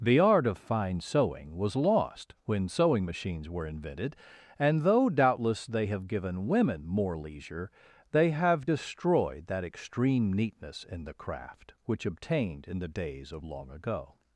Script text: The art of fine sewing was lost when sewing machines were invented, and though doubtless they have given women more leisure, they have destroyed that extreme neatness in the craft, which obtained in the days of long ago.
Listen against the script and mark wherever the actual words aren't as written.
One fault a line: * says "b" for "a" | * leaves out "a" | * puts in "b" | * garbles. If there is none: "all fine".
all fine